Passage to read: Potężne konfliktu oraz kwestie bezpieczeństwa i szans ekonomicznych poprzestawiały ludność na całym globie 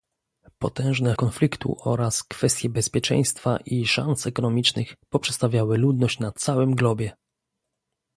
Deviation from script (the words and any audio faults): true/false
false